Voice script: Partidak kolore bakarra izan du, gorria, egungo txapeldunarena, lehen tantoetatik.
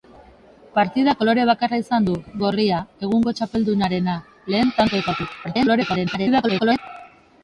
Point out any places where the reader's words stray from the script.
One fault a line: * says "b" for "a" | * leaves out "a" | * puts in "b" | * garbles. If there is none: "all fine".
* garbles